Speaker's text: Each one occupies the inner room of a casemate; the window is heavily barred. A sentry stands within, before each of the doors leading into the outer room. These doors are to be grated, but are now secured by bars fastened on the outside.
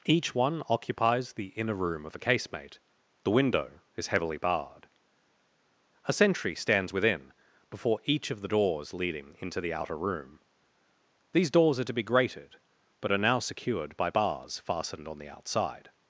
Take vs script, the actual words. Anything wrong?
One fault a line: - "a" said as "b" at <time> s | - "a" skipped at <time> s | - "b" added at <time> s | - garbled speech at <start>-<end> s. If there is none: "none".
none